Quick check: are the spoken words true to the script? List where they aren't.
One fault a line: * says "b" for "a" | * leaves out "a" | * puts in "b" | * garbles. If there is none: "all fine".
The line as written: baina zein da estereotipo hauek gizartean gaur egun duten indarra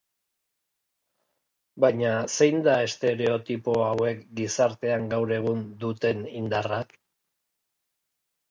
all fine